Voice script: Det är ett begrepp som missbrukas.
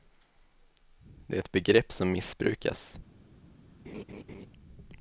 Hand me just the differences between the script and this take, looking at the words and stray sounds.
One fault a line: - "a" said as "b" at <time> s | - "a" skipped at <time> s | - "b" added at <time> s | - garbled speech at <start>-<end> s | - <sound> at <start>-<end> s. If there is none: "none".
- laugh at 3.8-4.5 s